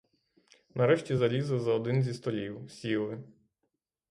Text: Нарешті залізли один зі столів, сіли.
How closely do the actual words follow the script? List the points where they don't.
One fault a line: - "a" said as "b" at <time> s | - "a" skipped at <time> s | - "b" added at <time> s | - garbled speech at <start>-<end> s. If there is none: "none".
- "за" added at 1.6 s